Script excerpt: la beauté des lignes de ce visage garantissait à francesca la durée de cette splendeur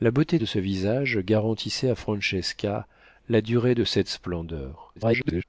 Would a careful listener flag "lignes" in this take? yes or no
yes